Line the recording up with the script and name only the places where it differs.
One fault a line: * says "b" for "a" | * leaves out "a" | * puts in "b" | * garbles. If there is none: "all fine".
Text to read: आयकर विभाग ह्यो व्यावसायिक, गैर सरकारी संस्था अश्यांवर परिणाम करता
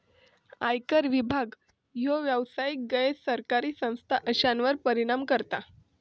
all fine